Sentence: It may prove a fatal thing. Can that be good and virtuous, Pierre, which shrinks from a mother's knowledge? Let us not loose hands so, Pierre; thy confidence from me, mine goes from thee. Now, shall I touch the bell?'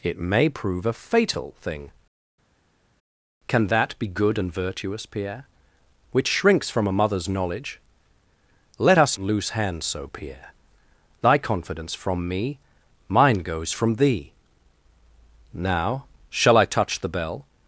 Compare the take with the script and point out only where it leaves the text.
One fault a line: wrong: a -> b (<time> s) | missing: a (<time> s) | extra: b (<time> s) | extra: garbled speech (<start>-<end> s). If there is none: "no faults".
missing: not (9.2 s)